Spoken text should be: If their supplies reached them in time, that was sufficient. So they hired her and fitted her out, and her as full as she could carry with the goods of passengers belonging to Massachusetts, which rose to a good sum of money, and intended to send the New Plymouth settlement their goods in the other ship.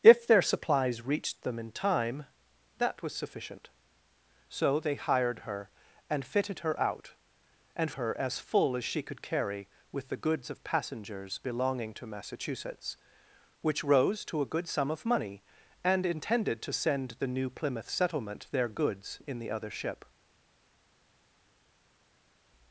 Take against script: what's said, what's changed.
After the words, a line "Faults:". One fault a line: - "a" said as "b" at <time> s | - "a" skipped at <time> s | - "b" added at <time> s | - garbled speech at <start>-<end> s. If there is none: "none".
If their supplies reached them in time, that was sufficient. So they hired her and fitted her out, and her as full as she could carry with the goods of passengers belonging to Massachusetts, which rose to a good sum of money, and intended to send the New Plymouth settlement their goods in the other ship.
Faults:
none